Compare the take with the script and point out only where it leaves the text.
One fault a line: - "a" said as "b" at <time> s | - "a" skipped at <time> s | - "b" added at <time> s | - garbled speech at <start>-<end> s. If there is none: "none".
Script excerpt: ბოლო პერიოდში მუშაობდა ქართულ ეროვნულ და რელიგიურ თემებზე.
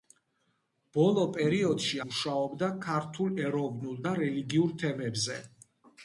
none